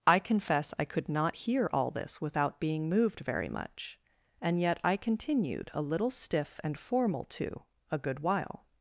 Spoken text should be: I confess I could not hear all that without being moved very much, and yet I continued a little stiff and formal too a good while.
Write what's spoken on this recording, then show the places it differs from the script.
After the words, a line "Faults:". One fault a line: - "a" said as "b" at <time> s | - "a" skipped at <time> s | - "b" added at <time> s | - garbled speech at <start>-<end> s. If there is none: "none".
I confess I could not hear all this without being moved very much, and yet I continued a little stiff and formal too a good while.
Faults:
- "that" said as "this" at 1.9 s